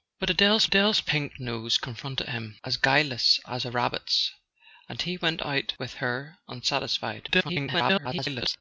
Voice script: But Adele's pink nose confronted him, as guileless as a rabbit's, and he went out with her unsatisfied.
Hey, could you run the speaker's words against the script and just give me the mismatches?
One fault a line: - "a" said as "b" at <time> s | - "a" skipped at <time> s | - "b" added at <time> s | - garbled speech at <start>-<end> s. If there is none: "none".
- "Adele's" added at 0.6 s
- garbled speech at 7.3-8.6 s